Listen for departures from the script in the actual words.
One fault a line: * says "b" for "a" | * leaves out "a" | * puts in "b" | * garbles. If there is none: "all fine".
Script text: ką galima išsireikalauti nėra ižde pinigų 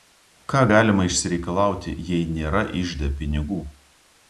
* puts in "jei"